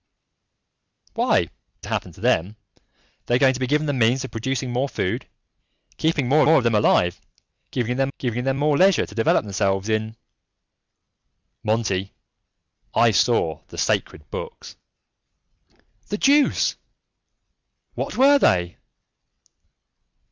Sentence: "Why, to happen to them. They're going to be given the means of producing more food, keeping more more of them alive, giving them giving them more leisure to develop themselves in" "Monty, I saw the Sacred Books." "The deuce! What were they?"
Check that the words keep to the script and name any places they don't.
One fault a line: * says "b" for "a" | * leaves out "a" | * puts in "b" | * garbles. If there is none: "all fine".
all fine